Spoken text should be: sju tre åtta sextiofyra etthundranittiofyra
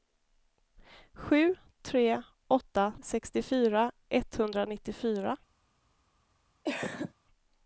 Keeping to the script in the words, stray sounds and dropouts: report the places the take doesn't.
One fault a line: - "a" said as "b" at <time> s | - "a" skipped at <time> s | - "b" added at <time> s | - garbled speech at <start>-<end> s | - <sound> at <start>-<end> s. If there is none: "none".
- cough at 6.6-7.1 s